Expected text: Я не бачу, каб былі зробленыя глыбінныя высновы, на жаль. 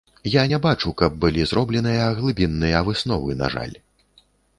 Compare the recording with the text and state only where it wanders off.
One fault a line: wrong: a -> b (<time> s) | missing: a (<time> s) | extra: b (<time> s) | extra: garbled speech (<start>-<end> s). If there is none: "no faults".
no faults